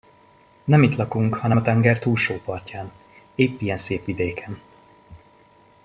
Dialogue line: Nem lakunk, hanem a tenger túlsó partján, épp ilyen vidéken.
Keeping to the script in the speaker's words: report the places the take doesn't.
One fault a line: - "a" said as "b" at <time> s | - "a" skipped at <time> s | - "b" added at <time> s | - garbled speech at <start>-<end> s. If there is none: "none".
- "itt" added at 0.8 s
- "szép" added at 3.8 s